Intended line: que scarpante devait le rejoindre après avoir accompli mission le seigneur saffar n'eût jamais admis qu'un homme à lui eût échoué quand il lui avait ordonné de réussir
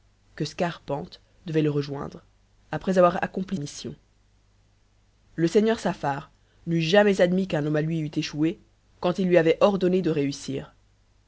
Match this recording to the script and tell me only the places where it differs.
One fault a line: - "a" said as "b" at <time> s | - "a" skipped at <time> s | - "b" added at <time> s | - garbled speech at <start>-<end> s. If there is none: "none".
none